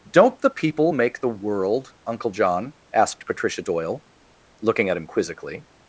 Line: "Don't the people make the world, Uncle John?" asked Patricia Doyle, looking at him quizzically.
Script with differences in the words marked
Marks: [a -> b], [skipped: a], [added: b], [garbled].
"Don't the people make the world, Uncle John?" asked Patricia Doyle, looking at him quizzically.